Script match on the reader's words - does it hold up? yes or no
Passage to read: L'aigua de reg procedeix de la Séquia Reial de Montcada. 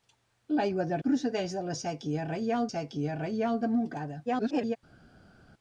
no